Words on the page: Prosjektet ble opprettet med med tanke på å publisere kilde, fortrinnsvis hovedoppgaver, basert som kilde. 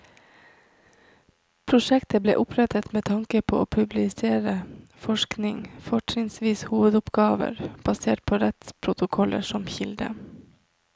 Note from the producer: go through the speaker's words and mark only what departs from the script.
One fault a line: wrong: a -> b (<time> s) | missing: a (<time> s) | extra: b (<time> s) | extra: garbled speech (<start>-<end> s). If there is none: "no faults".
missing: med (3.0 s)
wrong: kilde -> forskning (5.1 s)
extra: på rettsprotokoller (8.2 s)